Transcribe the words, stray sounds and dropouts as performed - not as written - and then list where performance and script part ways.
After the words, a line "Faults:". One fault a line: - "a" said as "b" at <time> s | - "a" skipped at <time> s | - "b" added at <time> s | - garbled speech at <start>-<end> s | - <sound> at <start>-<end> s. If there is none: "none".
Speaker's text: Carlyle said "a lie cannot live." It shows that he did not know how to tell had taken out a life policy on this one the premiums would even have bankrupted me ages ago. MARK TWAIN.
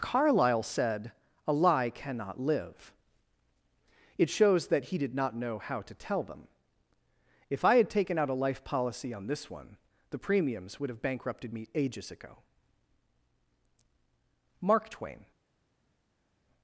Carlyle said "a lie cannot live." It shows that he did not know how to tell them. If I had taken out a life policy on this one the premiums would have bankrupted me ages ago. MARK TWAIN.
Faults:
- "them If I" added at 6.2 s
- "even" skipped at 10.9 s